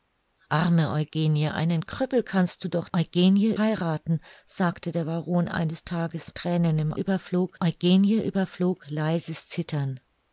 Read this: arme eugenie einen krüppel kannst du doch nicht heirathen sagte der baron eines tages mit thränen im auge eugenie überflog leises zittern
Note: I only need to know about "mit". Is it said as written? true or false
false